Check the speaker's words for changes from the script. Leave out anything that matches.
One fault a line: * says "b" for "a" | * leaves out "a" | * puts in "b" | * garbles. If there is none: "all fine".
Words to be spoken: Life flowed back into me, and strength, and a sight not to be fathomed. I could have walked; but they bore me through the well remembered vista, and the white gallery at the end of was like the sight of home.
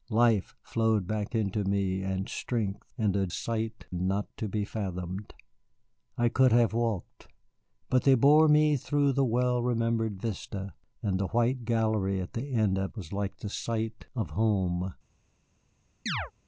all fine